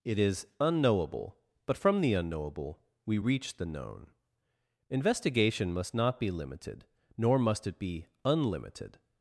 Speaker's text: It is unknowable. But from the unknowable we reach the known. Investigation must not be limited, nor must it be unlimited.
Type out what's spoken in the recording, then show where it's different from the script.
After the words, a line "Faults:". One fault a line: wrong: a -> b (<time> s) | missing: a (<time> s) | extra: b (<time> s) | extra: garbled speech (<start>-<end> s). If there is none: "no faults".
It is unknowable. But from the unknowable we reach the known. Investigation must not be limited, nor must it be unlimited.
Faults:
no faults